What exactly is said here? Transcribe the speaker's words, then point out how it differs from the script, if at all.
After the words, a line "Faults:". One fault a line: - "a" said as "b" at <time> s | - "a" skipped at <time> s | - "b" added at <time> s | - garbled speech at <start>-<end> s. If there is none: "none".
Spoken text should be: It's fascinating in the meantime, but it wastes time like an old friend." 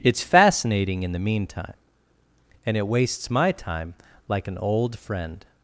It's fascinating in the meantime, and it wastes my time like an old friend."
Faults:
- "but" said as "and" at 2.6 s
- "my" added at 3.3 s